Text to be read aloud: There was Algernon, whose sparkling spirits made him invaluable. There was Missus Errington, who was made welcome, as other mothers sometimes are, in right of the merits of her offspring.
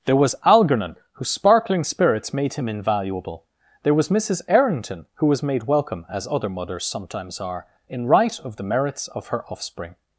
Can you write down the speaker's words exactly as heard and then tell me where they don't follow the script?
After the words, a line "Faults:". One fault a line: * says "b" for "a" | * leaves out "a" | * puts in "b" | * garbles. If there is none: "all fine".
There was Algernon, whose sparkling spirits made him invaluable. There was Missus Errington, who was made welcome, as other mothers sometimes are, in right of the merits of her offspring.
Faults:
all fine